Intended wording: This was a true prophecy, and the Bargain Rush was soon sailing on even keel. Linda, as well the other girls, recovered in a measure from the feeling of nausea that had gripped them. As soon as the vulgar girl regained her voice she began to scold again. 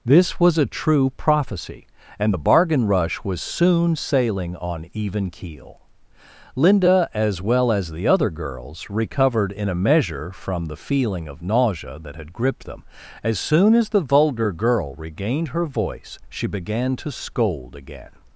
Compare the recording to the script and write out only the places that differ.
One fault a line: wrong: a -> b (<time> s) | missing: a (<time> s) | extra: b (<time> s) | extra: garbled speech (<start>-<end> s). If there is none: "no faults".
extra: as (7.7 s)